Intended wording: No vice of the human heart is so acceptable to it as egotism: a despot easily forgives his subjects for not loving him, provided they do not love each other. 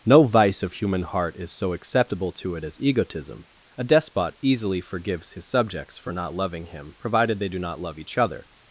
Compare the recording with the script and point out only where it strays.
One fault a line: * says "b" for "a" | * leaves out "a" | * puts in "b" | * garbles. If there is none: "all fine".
* leaves out "the"